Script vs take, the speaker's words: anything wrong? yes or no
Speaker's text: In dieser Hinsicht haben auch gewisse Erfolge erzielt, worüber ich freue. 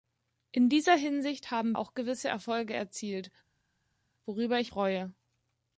no